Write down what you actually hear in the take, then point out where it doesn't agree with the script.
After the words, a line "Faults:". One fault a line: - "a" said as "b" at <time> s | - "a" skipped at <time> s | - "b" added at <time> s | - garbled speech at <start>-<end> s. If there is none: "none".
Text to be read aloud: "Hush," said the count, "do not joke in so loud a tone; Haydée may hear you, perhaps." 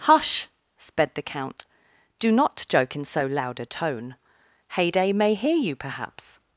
"Hush," sped the count, "do not joke in so loud a tone; Haydée may hear you, perhaps."
Faults:
- "said" said as "sped" at 0.8 s